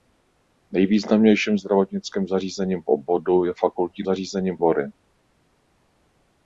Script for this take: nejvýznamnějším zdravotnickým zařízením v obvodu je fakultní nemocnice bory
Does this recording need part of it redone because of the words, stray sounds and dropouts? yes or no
yes